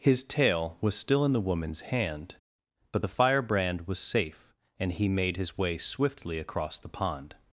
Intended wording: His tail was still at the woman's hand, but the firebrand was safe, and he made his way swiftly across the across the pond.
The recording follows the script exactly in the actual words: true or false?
false